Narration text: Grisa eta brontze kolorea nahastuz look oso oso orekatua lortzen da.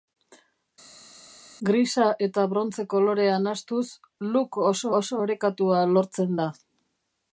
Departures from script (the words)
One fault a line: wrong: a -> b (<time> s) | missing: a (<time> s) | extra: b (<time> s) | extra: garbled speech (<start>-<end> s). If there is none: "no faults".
no faults